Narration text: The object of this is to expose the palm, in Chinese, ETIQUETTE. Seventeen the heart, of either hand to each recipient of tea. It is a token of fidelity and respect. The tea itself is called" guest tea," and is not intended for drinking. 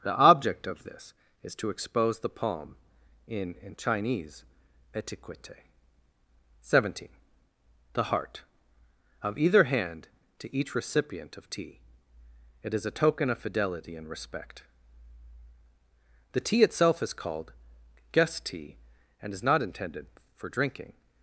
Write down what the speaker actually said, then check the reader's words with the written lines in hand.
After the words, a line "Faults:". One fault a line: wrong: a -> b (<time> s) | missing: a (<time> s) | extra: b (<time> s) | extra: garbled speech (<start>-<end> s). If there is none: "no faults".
The object of this is to expose the palm, in in Chinese, ETIQUETTE. Seventeen the heart, of either hand to each recipient of tea. It is a token of fidelity and respect. The tea itself is called" guest tea," and is not intended for drinking.
Faults:
extra: in (3.6 s)